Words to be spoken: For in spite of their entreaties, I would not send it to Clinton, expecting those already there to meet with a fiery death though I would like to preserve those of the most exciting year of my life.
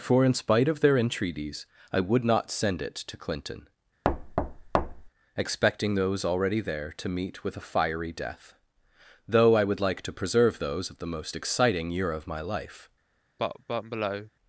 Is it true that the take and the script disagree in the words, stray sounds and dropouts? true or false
true